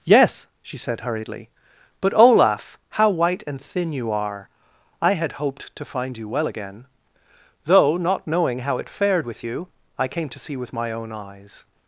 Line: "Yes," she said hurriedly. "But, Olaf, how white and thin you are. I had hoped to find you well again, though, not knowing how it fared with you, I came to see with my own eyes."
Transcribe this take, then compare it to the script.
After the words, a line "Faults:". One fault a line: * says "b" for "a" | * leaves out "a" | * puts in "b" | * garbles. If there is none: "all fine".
"Yes," she said hurriedly. "But, Olaf, how white and thin you are. I had hoped to find you well again, though, not knowing how it fared with you, I came to see with my own eyes."
Faults:
all fine